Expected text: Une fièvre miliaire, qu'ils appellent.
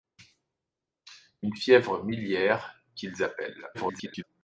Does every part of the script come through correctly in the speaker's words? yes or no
no